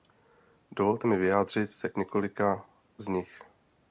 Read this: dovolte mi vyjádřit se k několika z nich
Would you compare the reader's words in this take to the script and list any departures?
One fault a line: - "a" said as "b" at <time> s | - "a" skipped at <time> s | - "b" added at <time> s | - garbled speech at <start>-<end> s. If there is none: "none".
none